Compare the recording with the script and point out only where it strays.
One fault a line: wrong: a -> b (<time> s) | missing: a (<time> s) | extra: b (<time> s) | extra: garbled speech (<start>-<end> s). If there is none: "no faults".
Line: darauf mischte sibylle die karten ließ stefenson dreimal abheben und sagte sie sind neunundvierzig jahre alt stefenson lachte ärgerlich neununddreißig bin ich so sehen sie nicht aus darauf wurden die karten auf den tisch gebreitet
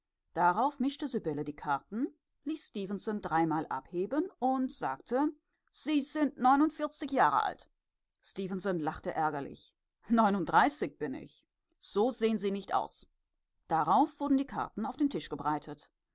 no faults